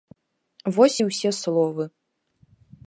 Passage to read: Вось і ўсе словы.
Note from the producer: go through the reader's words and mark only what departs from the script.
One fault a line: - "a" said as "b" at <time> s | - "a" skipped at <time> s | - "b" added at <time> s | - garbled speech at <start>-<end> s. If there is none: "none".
none